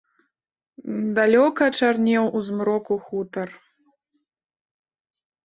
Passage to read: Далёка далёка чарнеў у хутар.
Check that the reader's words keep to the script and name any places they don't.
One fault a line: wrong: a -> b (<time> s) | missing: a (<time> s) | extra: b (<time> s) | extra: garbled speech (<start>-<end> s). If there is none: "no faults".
missing: далёка (1.6 s)
extra: змроку (2.5 s)